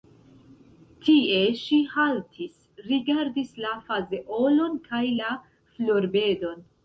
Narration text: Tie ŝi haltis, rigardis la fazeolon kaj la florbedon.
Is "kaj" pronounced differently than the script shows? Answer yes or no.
no